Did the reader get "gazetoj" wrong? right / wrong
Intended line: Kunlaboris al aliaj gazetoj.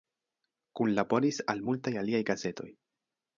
right